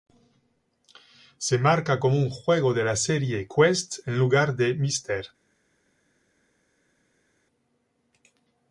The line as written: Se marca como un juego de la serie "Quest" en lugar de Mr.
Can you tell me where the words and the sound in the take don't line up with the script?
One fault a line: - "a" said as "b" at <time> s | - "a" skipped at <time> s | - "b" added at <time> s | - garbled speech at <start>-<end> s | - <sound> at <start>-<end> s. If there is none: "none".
none